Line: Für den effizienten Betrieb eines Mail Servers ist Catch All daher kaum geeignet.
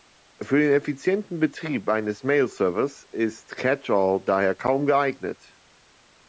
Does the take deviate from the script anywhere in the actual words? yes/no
no